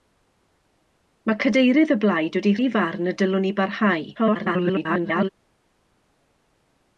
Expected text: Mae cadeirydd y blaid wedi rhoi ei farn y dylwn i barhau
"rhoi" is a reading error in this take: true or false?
true